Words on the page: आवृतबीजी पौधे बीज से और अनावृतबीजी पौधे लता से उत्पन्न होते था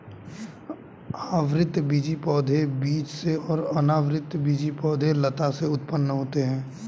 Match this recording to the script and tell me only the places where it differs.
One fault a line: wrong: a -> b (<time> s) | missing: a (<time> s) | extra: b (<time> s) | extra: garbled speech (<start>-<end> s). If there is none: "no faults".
wrong: था -> है (6.4 s)